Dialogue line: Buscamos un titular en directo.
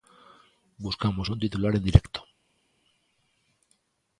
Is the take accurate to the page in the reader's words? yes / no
yes